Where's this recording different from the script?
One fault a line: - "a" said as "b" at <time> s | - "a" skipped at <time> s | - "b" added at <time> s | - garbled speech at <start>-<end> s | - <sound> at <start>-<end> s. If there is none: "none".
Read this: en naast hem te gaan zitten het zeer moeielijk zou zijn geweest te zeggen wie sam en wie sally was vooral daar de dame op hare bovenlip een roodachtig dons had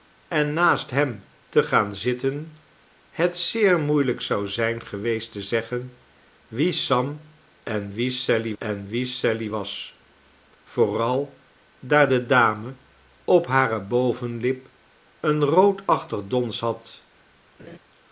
- "en wie sally" added at 8.6 s
- laugh at 17.6-17.8 s